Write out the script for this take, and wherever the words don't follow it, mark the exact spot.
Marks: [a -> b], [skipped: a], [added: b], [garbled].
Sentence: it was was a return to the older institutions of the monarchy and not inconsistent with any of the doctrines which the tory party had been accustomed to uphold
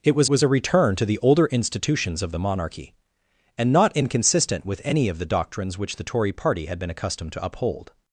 it was was a return to the older institutions of the monarchy and not inconsistent with any of the doctrines which the tory party had been accustomed to uphold